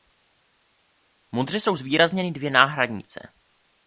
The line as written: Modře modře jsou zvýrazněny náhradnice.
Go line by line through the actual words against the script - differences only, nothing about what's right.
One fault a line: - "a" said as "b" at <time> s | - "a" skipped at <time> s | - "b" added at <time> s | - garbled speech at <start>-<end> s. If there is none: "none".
- "modře" skipped at 1.6 s
- "dvě" added at 2.3 s